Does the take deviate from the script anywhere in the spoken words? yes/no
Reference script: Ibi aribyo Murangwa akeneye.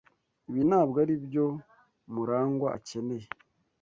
yes